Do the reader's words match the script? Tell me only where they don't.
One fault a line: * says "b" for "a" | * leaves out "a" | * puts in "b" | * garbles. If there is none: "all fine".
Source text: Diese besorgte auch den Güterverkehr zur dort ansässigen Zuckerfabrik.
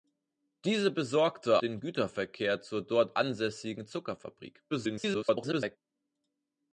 * leaves out "auch"
* garbles